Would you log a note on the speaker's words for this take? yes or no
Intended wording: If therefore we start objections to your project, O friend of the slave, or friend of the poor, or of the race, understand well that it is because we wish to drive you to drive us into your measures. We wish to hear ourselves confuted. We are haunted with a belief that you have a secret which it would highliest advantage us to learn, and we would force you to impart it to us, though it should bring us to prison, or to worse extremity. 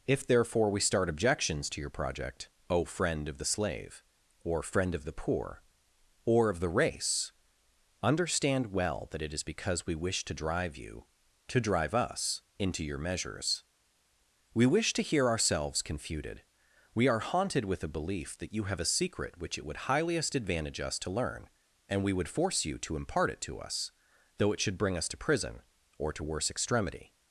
no